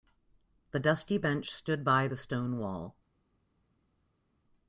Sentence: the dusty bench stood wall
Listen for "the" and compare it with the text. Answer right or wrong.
right